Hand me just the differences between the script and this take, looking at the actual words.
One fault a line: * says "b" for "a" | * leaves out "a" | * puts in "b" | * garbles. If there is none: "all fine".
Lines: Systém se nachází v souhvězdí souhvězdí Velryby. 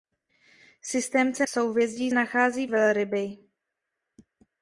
* leaves out "nachází"
* says "nachází" for "souhvězdí"